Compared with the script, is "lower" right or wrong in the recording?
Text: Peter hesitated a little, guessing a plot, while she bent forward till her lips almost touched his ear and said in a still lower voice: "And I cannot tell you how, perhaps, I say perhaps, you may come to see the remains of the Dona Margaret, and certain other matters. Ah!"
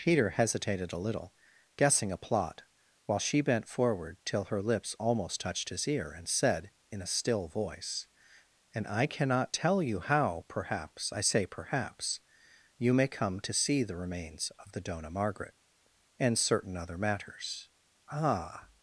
wrong